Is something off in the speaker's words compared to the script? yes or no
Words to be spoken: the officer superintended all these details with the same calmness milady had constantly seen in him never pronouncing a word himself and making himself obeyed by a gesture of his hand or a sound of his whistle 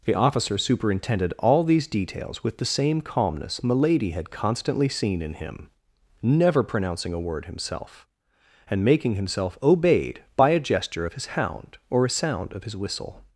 yes